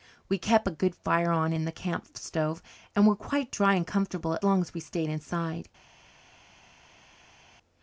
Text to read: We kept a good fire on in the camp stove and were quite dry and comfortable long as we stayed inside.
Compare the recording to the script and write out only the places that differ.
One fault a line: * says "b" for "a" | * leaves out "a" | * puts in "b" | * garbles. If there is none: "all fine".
all fine